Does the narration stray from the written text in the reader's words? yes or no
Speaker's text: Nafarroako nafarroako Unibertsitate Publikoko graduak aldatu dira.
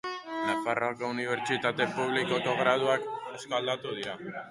yes